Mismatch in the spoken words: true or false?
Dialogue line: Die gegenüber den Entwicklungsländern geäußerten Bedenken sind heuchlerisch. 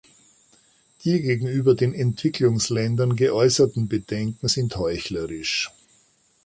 false